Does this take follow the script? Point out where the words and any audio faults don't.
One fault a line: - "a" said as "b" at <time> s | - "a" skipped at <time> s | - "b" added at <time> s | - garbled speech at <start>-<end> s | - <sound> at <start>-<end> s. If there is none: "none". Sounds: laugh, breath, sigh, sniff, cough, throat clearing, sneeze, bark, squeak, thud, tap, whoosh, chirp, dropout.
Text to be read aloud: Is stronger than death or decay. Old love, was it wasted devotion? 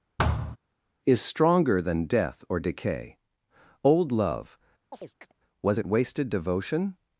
- thud at 0.2-0.6 s
- chirp at 4.9-5.3 s